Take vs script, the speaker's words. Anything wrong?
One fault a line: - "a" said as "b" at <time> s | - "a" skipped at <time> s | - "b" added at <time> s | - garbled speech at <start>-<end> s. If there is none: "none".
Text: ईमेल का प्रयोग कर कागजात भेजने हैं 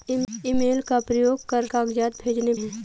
none